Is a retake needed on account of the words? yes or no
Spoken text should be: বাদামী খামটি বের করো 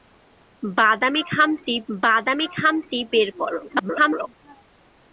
yes